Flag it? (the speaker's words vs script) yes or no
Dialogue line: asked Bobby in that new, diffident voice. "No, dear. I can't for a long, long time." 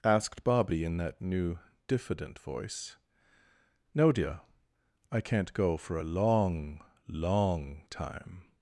yes